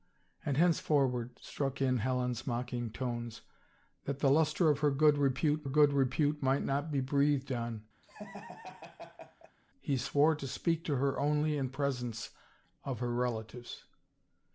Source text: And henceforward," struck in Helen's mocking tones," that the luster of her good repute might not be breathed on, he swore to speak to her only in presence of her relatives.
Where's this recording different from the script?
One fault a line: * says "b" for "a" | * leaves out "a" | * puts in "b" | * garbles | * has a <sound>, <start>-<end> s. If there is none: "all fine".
* puts in "good repute"
* has a laugh, 8.0-9.6 s